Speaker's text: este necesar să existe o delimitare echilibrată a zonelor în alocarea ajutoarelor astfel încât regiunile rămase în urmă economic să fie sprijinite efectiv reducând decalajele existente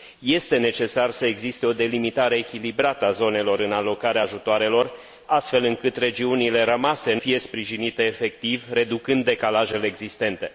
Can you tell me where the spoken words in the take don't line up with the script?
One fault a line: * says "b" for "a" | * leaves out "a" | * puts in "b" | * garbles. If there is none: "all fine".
* leaves out "urmă economic să"